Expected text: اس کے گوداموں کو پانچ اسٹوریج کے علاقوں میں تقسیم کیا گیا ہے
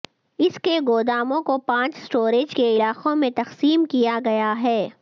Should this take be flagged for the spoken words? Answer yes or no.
no